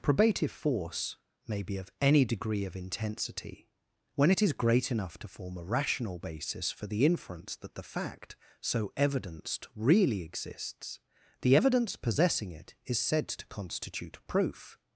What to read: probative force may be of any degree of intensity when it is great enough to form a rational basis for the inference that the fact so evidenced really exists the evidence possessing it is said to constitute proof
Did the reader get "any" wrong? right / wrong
right